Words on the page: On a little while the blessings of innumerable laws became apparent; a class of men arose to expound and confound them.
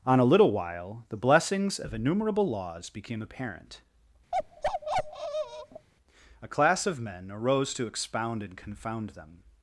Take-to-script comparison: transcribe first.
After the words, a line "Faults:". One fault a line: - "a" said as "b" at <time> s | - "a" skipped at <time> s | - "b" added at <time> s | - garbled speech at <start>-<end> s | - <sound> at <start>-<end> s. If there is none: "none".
On a little while the blessings of innumerable laws became apparent; a class of men arose to expound and confound them.
Faults:
- bark at 4.3-5.9 s